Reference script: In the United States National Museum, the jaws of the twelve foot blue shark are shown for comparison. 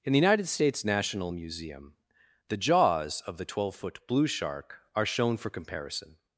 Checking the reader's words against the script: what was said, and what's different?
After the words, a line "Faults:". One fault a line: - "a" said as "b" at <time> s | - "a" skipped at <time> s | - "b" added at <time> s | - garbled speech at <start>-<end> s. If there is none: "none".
In the United States National Museum, the jaws of the twelve foot blue shark are shown for comparison.
Faults:
none